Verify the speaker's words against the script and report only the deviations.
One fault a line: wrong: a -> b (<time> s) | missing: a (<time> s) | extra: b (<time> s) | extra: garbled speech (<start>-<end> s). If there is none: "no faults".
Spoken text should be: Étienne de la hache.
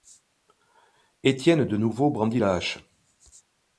extra: nouveau brandit (1.8 s)